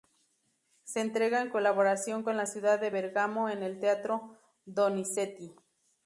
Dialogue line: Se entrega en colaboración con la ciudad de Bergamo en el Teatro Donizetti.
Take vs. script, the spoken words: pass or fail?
pass